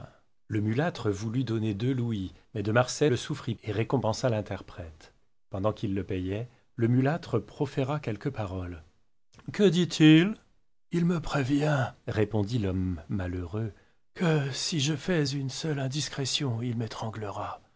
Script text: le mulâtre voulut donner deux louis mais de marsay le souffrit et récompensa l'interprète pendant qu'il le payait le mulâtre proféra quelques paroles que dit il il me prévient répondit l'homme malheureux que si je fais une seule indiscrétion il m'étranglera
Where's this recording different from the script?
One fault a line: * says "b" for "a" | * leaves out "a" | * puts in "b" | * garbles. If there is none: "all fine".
all fine